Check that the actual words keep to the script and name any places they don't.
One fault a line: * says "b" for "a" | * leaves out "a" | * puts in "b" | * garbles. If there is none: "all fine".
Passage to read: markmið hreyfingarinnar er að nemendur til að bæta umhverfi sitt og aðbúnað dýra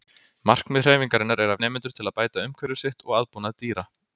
all fine